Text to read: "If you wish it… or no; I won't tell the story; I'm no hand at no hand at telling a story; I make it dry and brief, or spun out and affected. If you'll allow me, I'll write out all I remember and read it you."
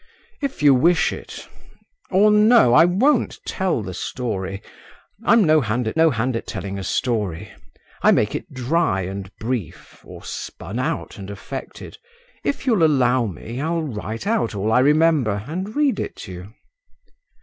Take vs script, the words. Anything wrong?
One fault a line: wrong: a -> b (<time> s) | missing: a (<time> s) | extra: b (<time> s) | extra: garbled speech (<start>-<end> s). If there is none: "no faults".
no faults